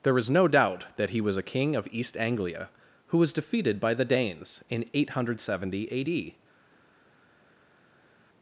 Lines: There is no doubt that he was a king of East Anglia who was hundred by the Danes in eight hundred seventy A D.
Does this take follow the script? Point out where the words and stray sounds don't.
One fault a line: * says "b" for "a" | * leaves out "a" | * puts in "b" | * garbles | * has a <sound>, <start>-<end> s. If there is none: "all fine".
* says "defeated" for "hundred"